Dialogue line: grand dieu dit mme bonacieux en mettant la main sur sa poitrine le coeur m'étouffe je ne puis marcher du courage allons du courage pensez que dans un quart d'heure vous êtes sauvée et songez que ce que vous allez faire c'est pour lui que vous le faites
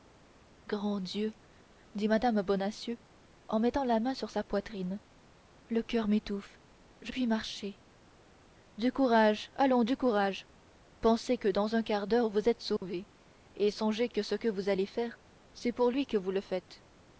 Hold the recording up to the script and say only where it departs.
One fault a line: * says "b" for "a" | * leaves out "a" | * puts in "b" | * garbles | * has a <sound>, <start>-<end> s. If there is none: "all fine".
* leaves out "ne"
* has a dropout, 12.8-12.8 s